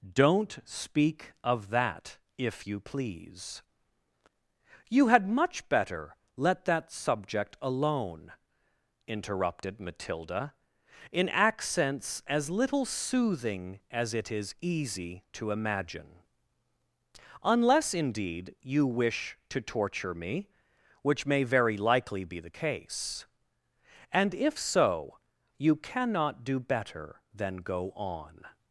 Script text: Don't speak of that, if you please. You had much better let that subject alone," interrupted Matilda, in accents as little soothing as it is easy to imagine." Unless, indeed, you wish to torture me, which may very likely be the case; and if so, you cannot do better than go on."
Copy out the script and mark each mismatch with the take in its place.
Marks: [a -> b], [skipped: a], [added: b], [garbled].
Don't speak of that, if you please. You had much better let that subject alone," interrupted Matilda, in accents as little soothing as it is easy to imagine." Unless, indeed, you wish to torture me, which may very likely be the case; and if so, you cannot do better than go on."